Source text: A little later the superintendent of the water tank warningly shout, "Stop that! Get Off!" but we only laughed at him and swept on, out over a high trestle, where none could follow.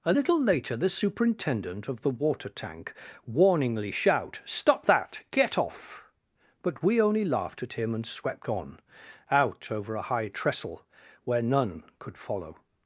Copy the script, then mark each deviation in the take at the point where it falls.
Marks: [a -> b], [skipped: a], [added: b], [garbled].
A little later the superintendent of the water tank warningly shout, "Stop that! Get Off!" but we only laughed at him and swept on, out over a high trestle, where none could follow.